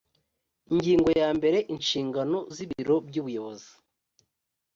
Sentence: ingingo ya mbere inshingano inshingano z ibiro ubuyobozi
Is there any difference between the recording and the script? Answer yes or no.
yes